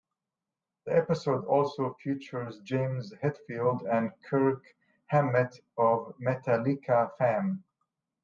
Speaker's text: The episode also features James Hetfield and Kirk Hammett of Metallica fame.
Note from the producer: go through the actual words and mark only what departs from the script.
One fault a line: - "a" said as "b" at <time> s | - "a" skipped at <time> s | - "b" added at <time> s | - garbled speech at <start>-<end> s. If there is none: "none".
none